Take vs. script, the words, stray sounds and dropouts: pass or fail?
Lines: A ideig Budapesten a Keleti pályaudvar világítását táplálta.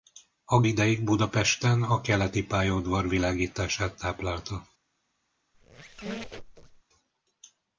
fail